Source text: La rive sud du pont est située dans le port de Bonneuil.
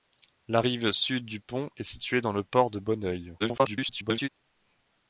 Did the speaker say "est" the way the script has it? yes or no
yes